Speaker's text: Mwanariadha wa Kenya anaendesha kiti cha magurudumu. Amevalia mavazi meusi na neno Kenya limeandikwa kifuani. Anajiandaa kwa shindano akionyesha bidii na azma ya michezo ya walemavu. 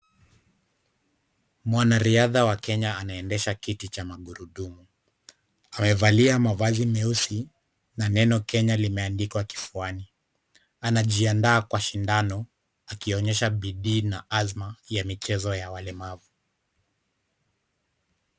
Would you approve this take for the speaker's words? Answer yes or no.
yes